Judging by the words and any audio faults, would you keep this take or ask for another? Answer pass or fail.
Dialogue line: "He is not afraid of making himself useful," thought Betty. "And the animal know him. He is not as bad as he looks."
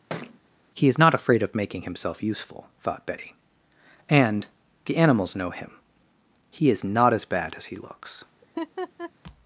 fail